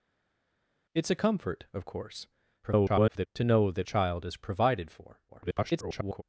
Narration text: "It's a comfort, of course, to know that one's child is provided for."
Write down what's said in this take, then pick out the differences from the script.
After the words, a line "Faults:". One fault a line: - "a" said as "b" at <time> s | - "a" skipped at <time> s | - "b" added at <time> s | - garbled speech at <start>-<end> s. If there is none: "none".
"It's a comfort, of course, [garbled] to know that child is provided for." [garbled]
Faults:
- garbled speech at 2.6-3.3 s
- "one's" skipped at 3.9 s
- garbled speech at 5.3-6.2 s